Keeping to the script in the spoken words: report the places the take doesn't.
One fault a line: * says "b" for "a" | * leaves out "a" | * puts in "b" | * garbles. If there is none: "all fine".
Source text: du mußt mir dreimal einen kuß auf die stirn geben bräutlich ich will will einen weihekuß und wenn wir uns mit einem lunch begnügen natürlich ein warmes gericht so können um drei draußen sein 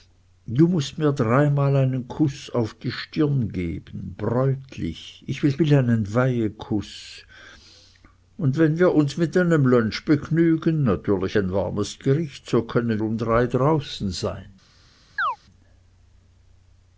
all fine